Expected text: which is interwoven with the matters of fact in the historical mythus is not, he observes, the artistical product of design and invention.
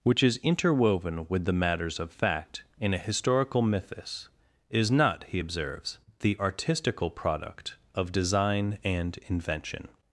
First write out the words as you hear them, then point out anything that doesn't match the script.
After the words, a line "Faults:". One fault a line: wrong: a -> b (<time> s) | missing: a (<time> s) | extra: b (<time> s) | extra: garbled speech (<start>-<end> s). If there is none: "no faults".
which is interwoven with the matters of fact in a historical mythus is not, he observes, the artistical product of design and invention.
Faults:
wrong: the -> a (2.9 s)